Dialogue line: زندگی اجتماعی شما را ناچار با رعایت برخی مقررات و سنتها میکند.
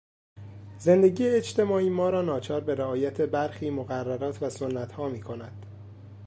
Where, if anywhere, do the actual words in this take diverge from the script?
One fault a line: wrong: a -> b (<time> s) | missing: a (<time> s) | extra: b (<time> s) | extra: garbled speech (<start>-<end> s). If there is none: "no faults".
wrong: شما -> ما (1.9 s)
wrong: با -> به (2.6 s)